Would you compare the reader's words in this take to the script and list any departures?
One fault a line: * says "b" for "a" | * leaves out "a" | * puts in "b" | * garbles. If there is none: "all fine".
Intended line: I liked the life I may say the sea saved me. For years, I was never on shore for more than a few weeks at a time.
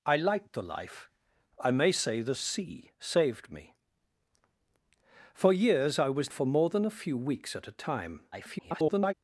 * leaves out "never on shore"
* garbles